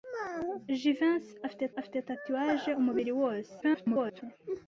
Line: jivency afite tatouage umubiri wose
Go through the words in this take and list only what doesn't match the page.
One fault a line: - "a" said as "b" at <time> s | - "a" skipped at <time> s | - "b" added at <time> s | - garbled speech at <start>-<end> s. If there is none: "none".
- "afite" added at 1.8 s
- garbled speech at 3.6-4.2 s